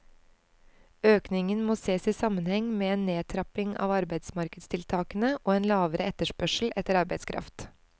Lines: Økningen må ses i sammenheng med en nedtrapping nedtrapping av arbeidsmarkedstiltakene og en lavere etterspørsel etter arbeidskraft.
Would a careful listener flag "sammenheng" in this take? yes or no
no